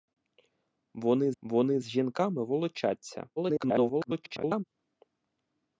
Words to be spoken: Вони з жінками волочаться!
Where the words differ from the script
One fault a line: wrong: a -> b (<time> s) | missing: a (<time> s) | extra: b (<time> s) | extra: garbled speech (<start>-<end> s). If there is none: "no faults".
extra: вони (1.4 s)
extra: garbled speech (3.4-4.6 s)